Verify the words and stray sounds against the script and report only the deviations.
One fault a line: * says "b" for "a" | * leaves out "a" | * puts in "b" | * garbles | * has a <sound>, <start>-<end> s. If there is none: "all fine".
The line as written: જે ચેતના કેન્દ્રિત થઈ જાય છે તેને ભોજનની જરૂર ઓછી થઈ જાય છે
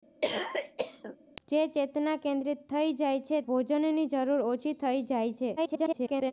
* has a cough, 0.2-1.2 s
* leaves out "તેને"
* garbles